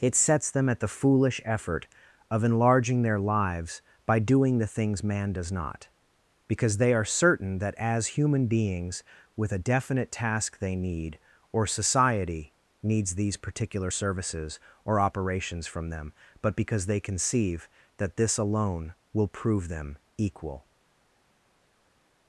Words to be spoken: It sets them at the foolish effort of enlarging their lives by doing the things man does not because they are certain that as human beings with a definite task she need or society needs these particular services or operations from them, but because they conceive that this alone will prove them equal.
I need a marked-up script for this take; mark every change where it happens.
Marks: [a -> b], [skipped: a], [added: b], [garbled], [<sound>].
It sets them at the foolish effort of enlarging their lives by doing the things man does not because they are certain that as human beings with a definite task [she -> they] need or society needs these particular services or operations from them, but because they conceive that this alone will prove them equal.